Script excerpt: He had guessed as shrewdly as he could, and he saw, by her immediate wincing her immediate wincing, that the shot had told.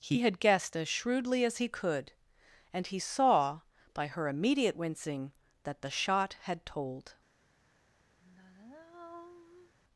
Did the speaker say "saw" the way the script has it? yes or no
yes